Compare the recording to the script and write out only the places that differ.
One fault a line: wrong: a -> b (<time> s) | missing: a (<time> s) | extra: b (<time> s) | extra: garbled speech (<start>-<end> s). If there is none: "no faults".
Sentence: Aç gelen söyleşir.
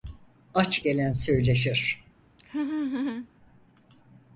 no faults